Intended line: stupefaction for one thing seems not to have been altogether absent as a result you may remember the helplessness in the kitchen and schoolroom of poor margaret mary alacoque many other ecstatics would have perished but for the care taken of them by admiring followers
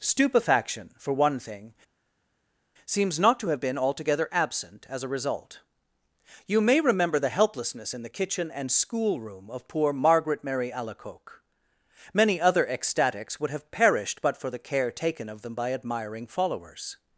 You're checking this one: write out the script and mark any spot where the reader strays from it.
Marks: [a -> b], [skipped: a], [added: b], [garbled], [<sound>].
stupefaction for one thing seems not to have been altogether absent as a result you may remember the helplessness in the kitchen and schoolroom of poor margaret mary alacoque many other ecstatics would have perished but for the care taken of them by admiring followers